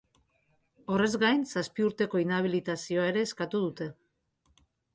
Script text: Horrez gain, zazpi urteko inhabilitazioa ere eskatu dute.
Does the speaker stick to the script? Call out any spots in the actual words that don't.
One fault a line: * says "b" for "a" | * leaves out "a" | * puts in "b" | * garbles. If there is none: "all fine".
all fine